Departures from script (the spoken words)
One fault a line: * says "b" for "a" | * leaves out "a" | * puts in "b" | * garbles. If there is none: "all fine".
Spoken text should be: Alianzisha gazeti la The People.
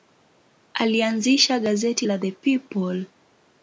all fine